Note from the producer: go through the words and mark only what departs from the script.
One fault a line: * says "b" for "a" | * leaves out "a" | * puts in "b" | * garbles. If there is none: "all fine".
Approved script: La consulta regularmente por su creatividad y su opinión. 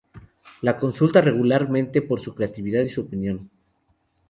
all fine